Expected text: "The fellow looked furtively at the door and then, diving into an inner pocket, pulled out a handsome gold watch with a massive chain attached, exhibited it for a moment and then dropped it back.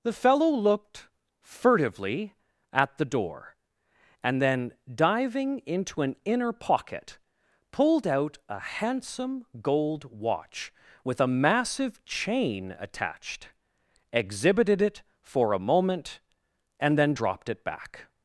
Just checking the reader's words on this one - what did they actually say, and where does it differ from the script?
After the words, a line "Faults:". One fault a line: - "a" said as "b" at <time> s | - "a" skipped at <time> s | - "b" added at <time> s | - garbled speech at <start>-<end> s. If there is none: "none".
"The fellow looked furtively at the door and then, diving into an inner pocket, pulled out a handsome gold watch with a massive chain attached, exhibited it for a moment and then dropped it back.
Faults:
none